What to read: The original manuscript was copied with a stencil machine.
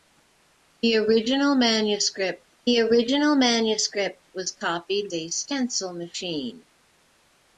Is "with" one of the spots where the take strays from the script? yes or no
yes